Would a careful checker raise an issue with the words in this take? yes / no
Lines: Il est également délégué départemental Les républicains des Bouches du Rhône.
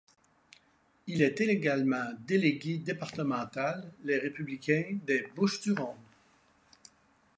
no